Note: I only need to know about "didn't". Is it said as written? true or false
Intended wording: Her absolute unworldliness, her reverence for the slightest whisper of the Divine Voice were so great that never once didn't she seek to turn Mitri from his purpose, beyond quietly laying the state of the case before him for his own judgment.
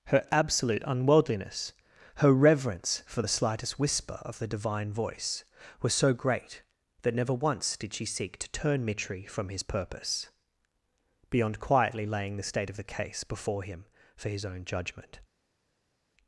false